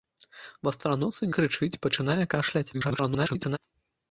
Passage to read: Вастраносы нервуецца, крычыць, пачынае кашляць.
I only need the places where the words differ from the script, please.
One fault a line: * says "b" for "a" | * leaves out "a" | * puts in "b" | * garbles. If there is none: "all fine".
* leaves out "нервуецца"
* garbles